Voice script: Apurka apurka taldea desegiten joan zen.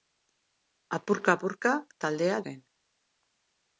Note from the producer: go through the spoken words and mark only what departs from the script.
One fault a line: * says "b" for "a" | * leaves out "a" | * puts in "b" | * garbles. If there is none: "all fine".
* leaves out "desegiten joan"